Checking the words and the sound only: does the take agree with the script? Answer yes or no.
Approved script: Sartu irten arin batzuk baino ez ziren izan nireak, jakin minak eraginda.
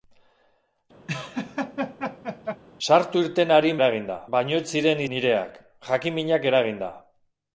no